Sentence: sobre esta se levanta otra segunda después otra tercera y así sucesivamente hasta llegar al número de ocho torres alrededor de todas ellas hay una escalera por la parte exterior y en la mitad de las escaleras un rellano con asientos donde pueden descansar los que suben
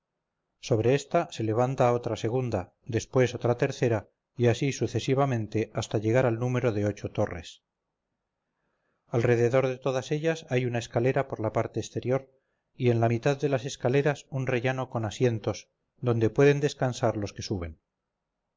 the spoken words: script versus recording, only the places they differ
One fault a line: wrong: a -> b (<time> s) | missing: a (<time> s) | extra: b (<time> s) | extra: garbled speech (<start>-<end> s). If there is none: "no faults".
no faults